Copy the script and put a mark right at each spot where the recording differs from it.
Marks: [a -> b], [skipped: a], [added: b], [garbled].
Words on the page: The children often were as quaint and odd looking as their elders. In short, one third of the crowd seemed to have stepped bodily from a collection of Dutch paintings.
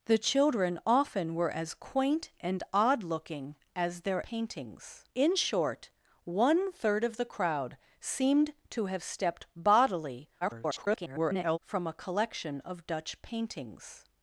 The children often were as quaint and odd looking as their [elders. -> paintings] In short, one third of the crowd seemed to have stepped bodily [garbled] from a collection of Dutch paintings.